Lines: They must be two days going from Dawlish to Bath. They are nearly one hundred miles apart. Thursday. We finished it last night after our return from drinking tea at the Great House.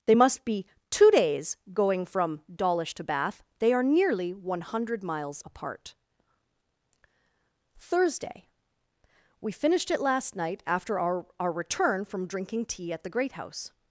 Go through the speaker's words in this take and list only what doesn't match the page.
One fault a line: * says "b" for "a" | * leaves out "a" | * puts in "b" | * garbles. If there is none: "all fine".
* puts in "our"